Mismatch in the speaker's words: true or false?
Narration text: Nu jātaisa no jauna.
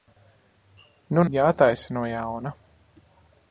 false